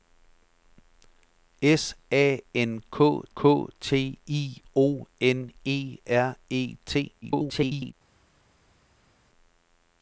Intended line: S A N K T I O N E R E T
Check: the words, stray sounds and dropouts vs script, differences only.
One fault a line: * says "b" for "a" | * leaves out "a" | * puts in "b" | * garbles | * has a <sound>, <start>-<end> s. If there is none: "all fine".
* puts in "K"
* garbles